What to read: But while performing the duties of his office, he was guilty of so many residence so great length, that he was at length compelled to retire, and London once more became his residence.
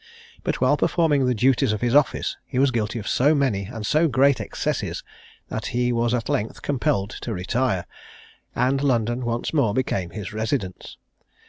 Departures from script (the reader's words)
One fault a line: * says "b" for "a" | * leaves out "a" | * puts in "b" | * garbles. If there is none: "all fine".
* says "and" for "residence"
* says "excesses" for "length"